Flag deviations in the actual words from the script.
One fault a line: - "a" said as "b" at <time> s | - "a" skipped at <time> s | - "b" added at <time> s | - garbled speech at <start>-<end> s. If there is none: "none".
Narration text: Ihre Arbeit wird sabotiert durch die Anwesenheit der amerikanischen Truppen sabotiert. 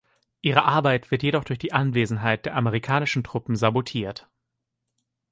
- "sabotiert" said as "jedoch" at 1.2 s